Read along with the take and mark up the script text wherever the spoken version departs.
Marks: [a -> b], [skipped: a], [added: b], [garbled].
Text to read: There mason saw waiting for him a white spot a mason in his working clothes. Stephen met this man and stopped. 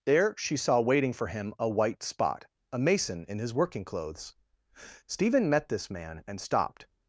There [mason -> she] saw waiting for him a white spot a mason in his working clothes. Stephen met this man and stopped.